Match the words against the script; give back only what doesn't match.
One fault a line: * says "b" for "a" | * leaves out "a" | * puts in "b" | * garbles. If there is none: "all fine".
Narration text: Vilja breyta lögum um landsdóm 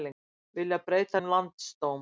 * leaves out "lögum"